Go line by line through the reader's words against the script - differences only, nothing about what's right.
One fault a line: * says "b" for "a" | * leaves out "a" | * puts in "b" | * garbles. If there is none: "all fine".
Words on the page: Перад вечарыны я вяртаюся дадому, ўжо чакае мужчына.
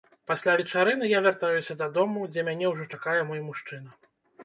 * says "Пасля" for "Перад"
* puts in "дзе мяне"
* puts in "мой"